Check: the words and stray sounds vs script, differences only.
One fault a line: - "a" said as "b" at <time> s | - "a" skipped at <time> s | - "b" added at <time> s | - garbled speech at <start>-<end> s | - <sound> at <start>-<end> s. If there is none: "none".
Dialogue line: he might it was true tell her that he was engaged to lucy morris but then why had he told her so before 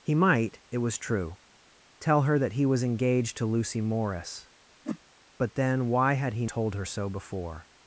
- whoosh at 4.8-5.0 s